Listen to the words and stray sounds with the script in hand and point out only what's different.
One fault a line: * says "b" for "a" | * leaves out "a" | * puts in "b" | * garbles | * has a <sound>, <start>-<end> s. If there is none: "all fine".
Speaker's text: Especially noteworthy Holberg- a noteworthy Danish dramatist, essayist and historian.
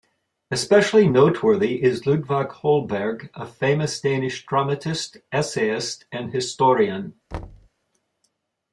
* puts in "is Ludvig"
* says "famous" for "noteworthy"
* has a thud, 7.3-7.7 s